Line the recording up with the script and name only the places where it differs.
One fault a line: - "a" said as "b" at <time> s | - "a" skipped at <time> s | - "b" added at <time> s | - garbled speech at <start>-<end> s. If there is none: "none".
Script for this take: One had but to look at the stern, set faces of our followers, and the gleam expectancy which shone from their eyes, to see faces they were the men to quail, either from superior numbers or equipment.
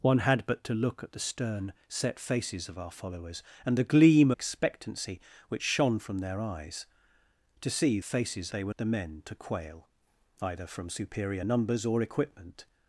none